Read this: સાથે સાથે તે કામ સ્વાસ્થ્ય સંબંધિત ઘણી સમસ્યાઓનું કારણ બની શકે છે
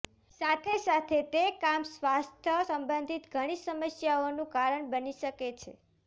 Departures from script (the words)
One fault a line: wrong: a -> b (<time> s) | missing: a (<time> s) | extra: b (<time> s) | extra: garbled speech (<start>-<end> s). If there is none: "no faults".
no faults